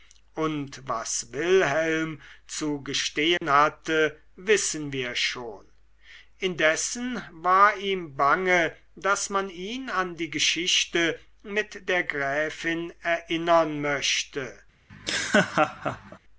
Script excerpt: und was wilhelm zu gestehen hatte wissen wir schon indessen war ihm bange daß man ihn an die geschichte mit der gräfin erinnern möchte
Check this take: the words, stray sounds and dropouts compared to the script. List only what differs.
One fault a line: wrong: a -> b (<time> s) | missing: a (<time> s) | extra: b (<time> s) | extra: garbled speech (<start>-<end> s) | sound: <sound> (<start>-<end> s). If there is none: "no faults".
sound: dropout (3.4-3.4 s)
sound: laugh (14.9-16.2 s)